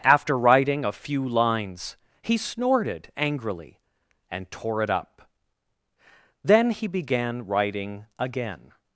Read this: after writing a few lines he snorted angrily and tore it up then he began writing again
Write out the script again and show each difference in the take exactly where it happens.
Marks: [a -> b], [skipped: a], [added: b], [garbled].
after writing a few lines he snorted angrily and tore it up then he began writing again